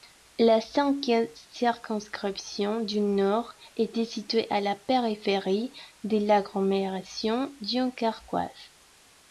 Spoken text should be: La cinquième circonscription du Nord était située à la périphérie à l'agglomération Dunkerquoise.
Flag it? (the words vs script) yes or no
yes